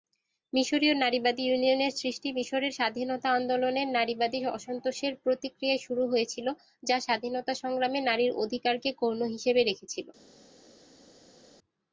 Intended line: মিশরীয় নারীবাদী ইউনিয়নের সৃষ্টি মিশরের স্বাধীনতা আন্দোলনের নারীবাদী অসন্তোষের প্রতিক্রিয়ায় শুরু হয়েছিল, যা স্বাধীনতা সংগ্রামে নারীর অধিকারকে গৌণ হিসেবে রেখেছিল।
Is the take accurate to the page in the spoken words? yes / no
yes